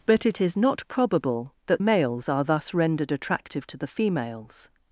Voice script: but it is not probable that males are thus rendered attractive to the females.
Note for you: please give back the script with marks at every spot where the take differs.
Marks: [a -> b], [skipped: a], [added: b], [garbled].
but it is not probable that males are thus rendered attractive to the females.